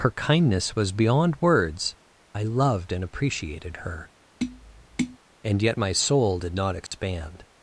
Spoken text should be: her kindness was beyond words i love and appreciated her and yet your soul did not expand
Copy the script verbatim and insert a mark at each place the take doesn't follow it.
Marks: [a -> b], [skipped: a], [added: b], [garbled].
her kindness was beyond words i [love -> loved] and appreciated her and yet [your -> my] soul did not expand